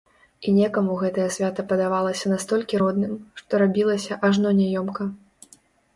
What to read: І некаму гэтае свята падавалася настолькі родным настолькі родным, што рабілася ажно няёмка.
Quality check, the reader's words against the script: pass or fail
fail